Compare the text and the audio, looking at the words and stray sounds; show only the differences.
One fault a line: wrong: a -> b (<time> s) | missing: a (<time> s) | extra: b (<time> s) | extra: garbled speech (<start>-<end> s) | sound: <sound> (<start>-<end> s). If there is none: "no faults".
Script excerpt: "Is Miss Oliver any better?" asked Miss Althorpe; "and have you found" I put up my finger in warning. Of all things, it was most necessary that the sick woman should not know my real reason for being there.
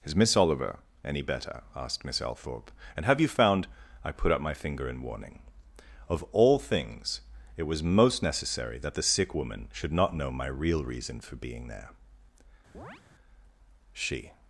sound: chirp (12.7-13.0 s)
extra: She (13.9 s)